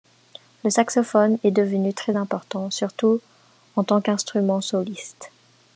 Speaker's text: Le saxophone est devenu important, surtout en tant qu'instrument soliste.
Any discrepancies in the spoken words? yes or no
yes